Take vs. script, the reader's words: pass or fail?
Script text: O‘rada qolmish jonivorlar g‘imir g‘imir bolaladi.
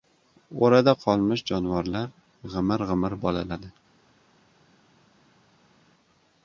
pass